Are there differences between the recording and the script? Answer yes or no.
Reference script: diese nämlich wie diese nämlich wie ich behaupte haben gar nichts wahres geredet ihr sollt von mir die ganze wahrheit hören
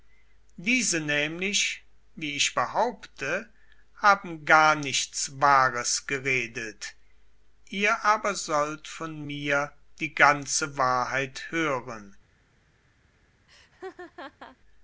yes